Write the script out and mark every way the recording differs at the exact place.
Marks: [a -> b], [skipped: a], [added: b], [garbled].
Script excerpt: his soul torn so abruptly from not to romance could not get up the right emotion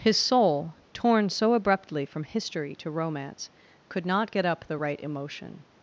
his soul torn so abruptly from [not -> history] to romance could not get up the right emotion